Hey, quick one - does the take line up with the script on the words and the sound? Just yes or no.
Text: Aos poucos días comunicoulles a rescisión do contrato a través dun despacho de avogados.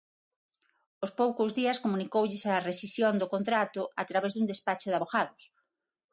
yes